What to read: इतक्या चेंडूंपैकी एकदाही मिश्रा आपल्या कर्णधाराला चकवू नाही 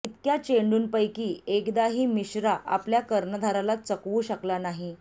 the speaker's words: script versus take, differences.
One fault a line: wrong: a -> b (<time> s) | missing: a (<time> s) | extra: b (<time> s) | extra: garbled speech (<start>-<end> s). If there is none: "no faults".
extra: शकला (4.2 s)